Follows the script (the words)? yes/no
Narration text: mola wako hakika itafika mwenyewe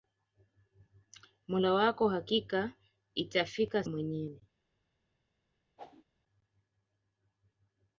yes